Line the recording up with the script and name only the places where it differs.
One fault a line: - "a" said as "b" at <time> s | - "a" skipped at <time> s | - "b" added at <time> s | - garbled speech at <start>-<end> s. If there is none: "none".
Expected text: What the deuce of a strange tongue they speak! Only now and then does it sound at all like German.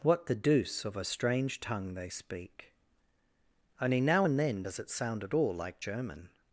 none